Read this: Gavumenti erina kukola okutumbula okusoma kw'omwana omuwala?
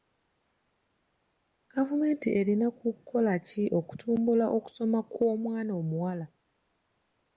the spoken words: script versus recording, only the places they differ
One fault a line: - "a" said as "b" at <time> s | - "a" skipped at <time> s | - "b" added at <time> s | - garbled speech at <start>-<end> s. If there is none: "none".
- "ki" added at 3.5 s